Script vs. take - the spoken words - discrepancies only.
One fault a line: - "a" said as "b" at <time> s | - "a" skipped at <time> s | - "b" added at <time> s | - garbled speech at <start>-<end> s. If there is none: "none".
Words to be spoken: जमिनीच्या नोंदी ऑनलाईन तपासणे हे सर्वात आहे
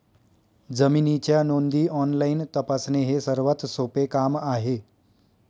- "सोपे काम" added at 3.7 s